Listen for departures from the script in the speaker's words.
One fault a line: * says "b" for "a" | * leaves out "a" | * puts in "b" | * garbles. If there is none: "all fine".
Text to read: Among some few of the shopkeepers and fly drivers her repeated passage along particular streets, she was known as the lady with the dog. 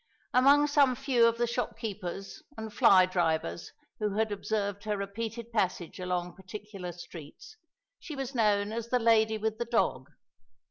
* puts in "who had observed"